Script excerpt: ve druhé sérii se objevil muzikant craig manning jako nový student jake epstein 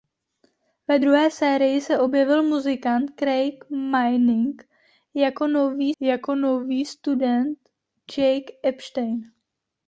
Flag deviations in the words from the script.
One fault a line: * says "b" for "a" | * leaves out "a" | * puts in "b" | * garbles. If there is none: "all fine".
* puts in "jako nový"